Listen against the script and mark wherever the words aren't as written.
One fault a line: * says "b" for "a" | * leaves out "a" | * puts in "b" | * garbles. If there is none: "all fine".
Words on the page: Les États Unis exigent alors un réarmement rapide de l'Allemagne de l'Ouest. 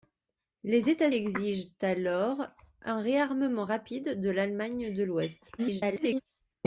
* leaves out "Unis"
* garbles